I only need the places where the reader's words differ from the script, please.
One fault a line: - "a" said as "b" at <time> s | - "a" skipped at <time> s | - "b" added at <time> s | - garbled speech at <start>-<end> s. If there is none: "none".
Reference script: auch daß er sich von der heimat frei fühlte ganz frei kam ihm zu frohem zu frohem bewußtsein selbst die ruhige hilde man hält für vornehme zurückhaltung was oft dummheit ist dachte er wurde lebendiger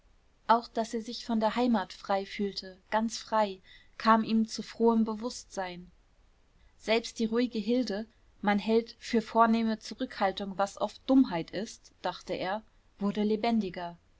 - "zu frohem" skipped at 5.0 s